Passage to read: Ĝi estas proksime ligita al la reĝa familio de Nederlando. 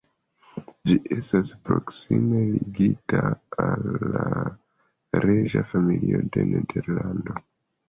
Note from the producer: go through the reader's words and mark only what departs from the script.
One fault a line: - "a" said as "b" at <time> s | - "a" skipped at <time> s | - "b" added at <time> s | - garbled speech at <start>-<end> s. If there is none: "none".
none